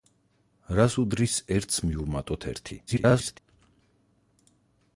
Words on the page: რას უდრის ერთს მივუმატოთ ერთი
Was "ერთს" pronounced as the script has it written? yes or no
yes